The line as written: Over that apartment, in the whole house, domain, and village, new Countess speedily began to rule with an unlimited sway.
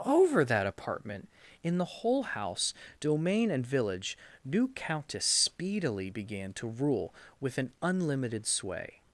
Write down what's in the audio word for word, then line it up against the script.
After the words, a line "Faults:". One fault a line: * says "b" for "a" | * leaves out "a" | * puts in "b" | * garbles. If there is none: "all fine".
Over that apartment, in the whole house, domain, and village, new Countess speedily began to rule with an unlimited sway.
Faults:
all fine